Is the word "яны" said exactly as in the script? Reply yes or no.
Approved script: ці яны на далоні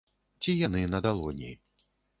yes